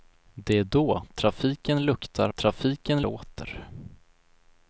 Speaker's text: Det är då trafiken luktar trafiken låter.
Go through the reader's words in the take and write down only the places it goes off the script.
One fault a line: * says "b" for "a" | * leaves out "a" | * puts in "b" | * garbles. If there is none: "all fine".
all fine